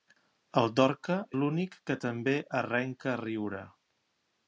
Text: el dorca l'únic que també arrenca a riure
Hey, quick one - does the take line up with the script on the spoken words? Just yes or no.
yes